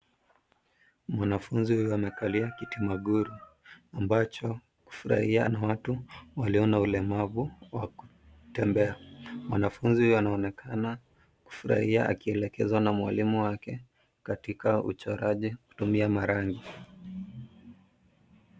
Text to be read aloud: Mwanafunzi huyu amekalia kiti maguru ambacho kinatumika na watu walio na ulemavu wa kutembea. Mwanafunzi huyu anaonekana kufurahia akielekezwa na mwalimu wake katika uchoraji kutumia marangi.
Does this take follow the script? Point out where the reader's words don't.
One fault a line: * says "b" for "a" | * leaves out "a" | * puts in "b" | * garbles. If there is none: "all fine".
* says "kufurahia" for "kinatumika"